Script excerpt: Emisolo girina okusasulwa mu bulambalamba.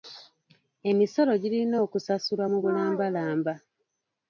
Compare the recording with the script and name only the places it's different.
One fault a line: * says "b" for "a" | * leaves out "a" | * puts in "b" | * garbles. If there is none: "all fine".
all fine